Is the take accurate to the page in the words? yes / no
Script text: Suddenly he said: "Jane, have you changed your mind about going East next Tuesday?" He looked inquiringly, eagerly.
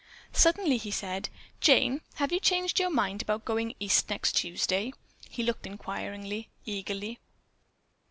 yes